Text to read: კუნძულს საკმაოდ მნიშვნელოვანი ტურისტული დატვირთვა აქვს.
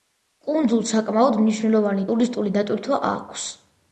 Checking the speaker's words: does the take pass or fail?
pass